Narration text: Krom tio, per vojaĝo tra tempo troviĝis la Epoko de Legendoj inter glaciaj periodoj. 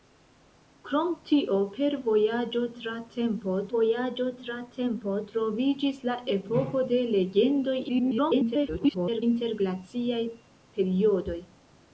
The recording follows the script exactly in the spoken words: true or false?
false